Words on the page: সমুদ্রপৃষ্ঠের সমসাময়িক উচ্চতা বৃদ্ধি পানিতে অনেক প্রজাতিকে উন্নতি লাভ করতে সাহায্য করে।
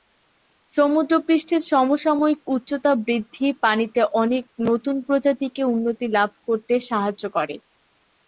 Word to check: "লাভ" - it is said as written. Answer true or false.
true